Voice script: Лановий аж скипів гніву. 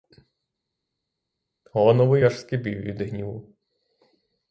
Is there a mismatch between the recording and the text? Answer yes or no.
yes